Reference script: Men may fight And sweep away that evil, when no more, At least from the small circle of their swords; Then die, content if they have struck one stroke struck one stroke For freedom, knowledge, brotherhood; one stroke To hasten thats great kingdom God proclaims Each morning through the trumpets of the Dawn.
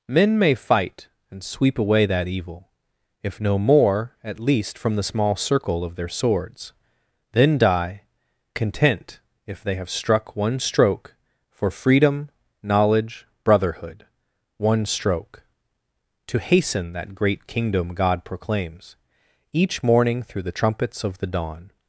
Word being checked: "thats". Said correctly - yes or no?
no